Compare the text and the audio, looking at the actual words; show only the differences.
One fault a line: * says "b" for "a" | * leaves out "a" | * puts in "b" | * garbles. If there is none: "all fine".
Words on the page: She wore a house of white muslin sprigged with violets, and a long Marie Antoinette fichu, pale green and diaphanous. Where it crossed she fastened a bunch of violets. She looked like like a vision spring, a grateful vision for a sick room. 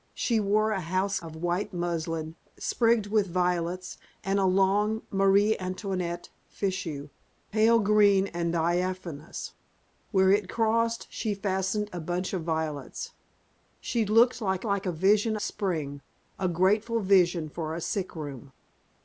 all fine